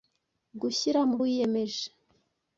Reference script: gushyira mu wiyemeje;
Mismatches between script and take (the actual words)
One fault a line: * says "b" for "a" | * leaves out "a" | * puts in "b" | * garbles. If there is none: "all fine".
all fine